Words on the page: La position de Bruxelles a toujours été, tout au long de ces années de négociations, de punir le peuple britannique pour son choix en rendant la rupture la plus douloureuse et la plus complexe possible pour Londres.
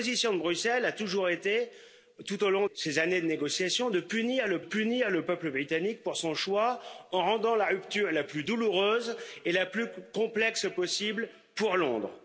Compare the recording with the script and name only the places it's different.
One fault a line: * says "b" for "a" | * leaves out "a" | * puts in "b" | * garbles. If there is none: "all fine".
* leaves out "de"
* puts in "punir le"